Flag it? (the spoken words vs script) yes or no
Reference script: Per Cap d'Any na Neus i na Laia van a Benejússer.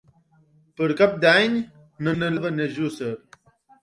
yes